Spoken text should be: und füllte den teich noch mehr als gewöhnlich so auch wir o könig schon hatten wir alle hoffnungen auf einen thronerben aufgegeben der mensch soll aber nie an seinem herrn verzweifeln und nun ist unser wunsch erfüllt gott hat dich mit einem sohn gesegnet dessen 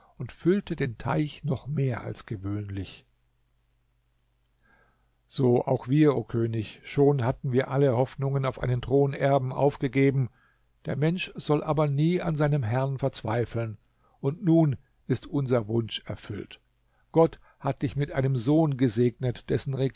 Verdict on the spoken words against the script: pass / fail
pass